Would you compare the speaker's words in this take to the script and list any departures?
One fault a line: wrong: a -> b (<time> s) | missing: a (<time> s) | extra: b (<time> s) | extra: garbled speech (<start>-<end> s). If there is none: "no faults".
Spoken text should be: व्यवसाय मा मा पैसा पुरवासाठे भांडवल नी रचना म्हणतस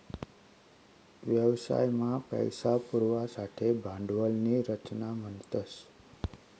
missing: मा (2.2 s)